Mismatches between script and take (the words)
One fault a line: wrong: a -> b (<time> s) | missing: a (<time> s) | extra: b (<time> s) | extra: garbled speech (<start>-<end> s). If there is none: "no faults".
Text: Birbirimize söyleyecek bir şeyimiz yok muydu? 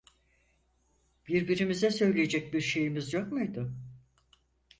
no faults